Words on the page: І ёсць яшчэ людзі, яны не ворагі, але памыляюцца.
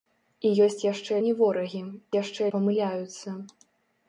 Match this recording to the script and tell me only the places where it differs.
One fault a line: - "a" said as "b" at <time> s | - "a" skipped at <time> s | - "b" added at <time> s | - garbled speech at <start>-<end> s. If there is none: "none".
- "людзі яны" skipped at 1.2 s
- "але" said as "яшчэ" at 2.1 s